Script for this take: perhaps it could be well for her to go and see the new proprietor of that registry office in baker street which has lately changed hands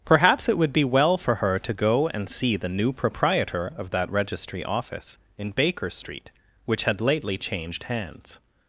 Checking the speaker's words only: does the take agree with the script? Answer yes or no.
no